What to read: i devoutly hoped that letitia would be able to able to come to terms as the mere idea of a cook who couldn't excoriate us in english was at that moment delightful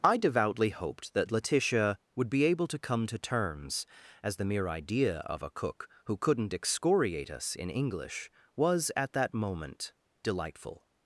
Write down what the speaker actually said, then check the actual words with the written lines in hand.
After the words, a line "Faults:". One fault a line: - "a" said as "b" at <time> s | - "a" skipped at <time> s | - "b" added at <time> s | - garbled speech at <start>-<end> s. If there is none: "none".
i devoutly hoped that letitia would be able to come to terms as the mere idea of a cook who couldn't excoriate us in english was at that moment delightful
Faults:
- "able to" skipped at 2.8 s